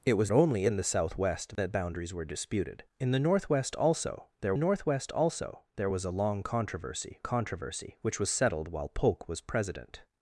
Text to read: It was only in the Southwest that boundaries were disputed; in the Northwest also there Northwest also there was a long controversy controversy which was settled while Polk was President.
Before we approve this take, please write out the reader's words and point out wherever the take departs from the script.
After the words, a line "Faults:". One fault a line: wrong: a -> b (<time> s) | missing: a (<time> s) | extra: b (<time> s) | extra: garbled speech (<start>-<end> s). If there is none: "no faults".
It was only in the Southwest that boundaries were disputed; in the Northwest also there Northwest also there was a long controversy controversy which was settled while Polk was President.
Faults:
no faults